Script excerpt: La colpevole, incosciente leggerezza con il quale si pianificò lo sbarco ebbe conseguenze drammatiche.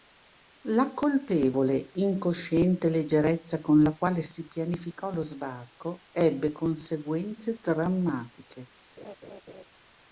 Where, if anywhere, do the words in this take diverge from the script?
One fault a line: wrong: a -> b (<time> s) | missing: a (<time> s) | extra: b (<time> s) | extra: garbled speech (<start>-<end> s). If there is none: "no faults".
wrong: il -> la (3.8 s)